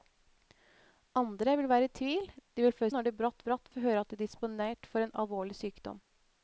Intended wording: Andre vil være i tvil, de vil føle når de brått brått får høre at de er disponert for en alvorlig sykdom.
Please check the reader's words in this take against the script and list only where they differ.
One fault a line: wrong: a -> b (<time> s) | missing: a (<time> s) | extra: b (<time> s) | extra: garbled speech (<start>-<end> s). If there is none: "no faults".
no faults